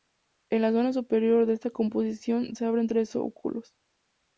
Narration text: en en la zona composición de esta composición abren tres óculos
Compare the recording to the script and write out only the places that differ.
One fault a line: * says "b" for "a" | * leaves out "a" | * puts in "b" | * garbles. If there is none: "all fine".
* leaves out "en"
* says "superior" for "composición"
* puts in "se"